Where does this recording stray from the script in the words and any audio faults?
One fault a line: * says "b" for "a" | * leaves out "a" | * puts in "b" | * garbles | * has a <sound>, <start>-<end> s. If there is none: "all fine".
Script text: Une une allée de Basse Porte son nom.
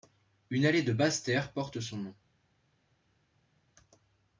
* leaves out "une"
* puts in "Terre"